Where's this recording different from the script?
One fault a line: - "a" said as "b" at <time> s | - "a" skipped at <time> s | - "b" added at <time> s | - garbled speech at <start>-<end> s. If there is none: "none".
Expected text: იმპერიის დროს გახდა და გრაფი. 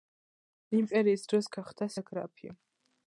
none